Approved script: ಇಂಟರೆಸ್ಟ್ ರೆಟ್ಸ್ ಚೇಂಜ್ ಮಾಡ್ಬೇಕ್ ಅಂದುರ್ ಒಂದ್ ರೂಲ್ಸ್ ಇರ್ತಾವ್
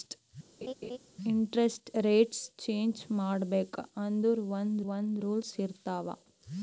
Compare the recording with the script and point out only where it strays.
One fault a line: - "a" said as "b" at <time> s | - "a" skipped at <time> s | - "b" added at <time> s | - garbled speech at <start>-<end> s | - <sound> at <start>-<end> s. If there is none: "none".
- laugh at 0.6-1.0 s
- "ಒಂದ್" added at 4.9 s